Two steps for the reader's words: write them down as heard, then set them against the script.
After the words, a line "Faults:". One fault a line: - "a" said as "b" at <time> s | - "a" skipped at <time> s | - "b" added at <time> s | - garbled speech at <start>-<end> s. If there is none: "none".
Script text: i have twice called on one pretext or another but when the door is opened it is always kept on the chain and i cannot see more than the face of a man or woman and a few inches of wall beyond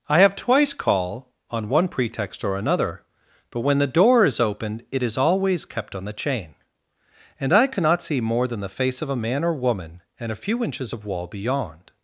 i have twice call on one pretext or another but when the door is opened it is always kept on the chain and i cannot see more than the face of a man or woman and a few inches of wall beyond
Faults:
- "called" said as "call" at 0.7 s